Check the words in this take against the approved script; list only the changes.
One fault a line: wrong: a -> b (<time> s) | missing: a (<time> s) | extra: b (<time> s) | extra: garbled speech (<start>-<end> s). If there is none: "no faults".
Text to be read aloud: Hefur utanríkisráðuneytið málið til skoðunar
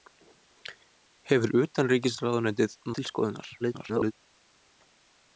missing: málið (2.8 s)
extra: garbled speech (3.6-4.1 s)